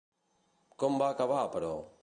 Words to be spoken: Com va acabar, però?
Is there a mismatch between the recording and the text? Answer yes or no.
no